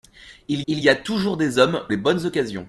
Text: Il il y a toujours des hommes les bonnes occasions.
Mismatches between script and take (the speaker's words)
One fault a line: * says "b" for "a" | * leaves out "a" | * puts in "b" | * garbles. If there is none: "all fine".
all fine